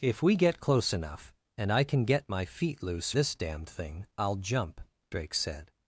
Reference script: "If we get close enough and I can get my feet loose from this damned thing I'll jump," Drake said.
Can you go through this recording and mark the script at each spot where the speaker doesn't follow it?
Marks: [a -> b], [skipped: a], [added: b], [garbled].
"If we get close enough and I can get my feet loose [skipped: from] this damned thing I'll jump," Drake said.